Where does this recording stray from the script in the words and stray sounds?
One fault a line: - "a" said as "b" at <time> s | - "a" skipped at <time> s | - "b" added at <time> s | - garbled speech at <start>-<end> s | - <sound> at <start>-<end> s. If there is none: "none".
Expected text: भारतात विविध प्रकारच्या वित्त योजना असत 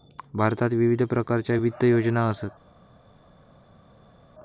none